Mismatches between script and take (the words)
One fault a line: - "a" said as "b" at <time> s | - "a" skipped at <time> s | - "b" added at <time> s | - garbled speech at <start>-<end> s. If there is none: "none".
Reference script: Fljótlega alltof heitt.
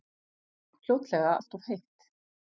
none